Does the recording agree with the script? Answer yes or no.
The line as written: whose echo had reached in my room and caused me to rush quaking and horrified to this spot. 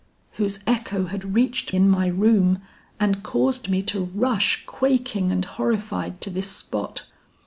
yes